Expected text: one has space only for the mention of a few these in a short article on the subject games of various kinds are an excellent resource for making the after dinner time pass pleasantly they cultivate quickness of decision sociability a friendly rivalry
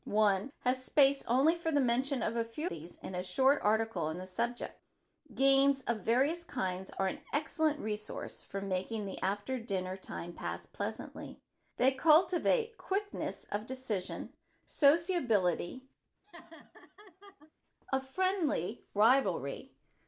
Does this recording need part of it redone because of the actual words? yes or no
no